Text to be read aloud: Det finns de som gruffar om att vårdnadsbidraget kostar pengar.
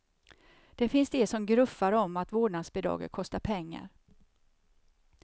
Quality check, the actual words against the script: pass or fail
pass